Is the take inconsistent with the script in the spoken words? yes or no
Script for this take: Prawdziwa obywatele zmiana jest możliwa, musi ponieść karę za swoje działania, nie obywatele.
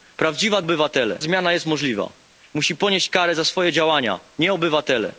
no